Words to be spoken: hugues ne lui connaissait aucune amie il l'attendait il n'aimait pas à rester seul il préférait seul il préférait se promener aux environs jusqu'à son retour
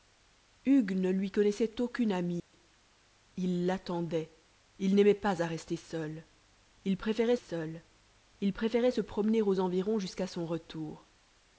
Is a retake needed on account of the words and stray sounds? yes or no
yes